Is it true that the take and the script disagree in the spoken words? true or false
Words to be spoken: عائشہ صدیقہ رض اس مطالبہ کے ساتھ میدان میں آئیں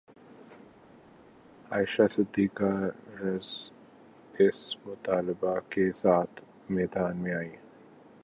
false